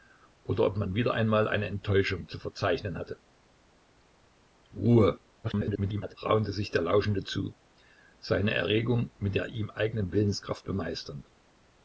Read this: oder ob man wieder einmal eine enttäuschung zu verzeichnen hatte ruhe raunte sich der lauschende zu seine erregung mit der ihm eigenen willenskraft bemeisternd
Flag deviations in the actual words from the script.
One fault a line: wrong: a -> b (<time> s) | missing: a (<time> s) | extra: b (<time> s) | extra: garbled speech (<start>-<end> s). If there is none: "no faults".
extra: garbled speech (5.4-6.1 s)